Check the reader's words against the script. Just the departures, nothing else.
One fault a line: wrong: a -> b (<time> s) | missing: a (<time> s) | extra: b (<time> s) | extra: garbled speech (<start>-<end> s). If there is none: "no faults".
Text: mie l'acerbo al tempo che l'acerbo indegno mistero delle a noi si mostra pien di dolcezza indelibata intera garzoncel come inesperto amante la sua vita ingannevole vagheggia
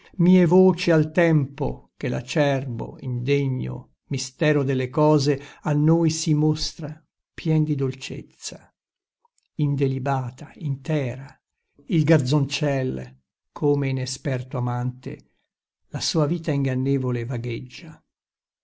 wrong: l'acerbo -> voci (0.5 s)
extra: cose (4.9 s)
extra: il (11.9 s)